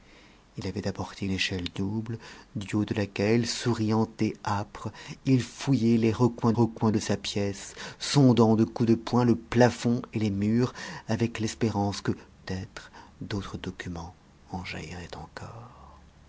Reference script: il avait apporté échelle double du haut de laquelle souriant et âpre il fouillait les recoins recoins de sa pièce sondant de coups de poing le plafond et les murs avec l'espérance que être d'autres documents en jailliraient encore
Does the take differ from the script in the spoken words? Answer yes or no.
no